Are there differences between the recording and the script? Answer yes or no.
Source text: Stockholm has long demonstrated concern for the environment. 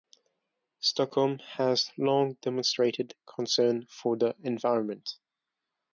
no